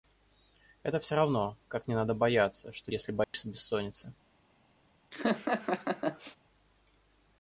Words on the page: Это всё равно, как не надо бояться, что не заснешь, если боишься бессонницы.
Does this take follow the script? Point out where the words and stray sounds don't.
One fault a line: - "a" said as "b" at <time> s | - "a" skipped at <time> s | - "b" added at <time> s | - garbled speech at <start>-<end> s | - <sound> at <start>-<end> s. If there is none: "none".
- "не заснешь" skipped at 2.9 s
- dropout at 3.2-3.3 s
- laugh at 5.1-6.4 s